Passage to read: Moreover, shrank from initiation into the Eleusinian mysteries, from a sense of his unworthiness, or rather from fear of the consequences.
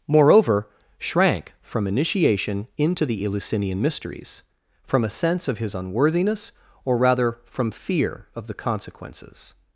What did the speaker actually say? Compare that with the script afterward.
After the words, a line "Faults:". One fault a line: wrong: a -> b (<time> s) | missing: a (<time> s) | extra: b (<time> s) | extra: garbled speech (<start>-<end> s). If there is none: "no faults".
Moreover, shrank from initiation into the Eleusinian mysteries, from a sense of his unworthiness, or rather from fear of the consequences.
Faults:
no faults